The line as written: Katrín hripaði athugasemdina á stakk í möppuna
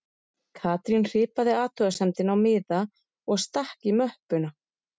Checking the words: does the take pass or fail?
fail